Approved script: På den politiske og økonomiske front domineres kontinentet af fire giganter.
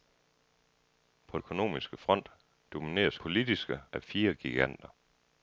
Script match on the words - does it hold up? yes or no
no